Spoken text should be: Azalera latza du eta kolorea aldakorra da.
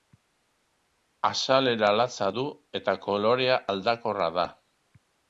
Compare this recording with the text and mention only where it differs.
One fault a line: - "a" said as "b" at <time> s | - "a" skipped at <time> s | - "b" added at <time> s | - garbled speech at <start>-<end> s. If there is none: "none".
none